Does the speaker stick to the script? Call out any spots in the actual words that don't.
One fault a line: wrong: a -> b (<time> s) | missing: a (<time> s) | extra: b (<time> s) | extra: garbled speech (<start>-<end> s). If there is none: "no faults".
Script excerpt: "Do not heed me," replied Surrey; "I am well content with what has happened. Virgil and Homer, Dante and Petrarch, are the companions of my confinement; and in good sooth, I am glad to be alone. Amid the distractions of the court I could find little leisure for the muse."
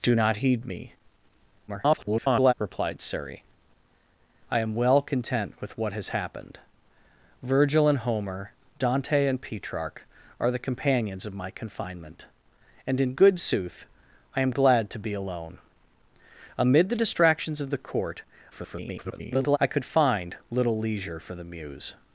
extra: garbled speech (1.7-2.5 s)
extra: garbled speech (18.5-19.6 s)